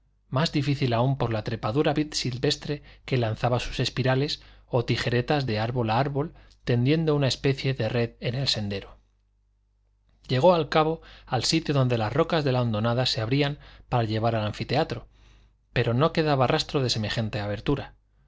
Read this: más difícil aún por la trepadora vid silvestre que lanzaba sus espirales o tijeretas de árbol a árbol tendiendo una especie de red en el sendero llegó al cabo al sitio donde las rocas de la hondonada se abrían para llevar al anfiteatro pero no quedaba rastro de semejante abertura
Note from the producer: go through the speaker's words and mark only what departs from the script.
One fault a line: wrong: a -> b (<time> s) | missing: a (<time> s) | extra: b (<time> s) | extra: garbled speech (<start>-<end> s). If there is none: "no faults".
no faults